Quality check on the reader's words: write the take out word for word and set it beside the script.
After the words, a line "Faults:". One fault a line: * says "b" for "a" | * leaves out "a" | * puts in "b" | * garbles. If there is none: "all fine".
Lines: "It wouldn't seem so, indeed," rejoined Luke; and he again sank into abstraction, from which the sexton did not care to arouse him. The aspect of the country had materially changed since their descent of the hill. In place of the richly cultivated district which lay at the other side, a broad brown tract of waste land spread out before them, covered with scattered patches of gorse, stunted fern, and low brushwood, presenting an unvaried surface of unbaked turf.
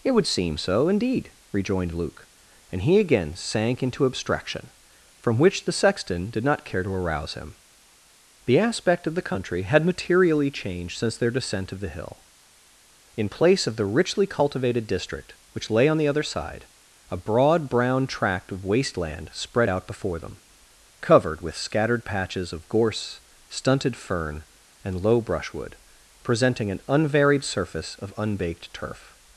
"It would seem so, indeed," rejoined Luke; and he again sank into abstraction, from which the sexton did not care to arouse him. The aspect of the country had materially changed since their descent of the hill. In place of the richly cultivated district which lay on the other side, a broad brown tract of waste land spread out before them, covered with scattered patches of gorse, stunted fern, and low brushwood, presenting an unvaried surface of unbaked turf.
Faults:
* says "would" for "wouldn't"
* says "on" for "at"